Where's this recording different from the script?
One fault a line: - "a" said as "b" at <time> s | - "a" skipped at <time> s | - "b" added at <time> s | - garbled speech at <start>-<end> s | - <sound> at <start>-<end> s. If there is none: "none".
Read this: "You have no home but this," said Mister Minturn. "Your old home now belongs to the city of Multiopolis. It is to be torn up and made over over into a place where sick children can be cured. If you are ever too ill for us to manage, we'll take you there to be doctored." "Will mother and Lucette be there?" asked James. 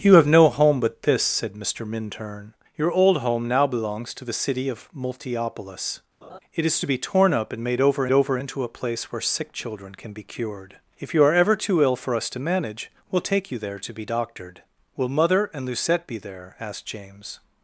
- laugh at 6.2-6.4 s